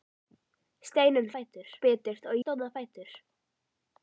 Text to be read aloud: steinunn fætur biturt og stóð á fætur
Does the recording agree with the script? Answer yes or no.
yes